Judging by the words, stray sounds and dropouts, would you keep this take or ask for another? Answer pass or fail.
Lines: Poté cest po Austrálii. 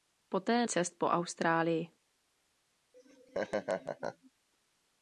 fail